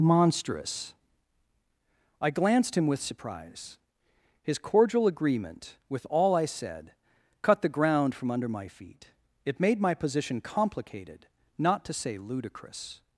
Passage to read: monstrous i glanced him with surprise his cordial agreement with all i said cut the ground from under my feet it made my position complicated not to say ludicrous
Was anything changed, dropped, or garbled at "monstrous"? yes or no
no